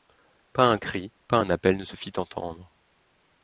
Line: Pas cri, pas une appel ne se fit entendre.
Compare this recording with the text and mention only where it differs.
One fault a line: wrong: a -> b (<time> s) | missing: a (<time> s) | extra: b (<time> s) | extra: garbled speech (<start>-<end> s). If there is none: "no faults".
extra: un (0.6 s)
wrong: une -> un (1.4 s)